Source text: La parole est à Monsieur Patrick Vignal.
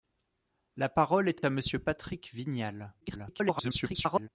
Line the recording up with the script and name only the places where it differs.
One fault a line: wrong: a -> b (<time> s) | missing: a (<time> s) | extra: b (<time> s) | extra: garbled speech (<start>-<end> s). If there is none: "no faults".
extra: est (1.3 s)
extra: garbled speech (3.0-4.3 s)